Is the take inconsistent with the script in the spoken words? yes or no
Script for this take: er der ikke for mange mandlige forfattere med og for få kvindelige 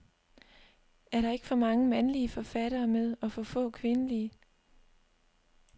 no